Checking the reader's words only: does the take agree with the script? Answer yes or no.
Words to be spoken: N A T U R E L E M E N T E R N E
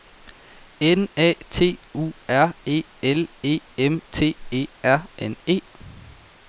no